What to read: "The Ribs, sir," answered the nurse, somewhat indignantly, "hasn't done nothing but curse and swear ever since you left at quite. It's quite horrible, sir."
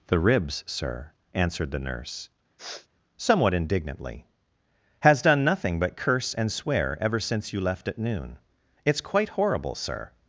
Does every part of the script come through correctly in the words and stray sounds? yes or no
no